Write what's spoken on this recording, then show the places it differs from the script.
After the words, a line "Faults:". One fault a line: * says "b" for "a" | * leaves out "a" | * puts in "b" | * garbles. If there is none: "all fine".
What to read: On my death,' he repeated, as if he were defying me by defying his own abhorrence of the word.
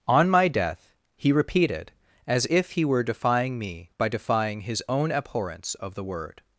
On my death,' he repeated, as if he were defying me by defying his own abhorrence of the word.
Faults:
all fine